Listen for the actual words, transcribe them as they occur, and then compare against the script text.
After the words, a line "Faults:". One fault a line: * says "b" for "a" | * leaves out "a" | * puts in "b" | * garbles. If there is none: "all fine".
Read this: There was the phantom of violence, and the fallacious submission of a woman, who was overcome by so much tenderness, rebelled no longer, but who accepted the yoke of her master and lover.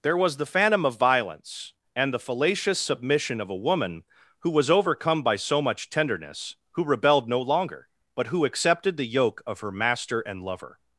There was the phantom of violence, and the fallacious submission of a woman, who was overcome by so much tenderness, who rebelled no longer, but who accepted the yoke of her master and lover.
Faults:
* puts in "who"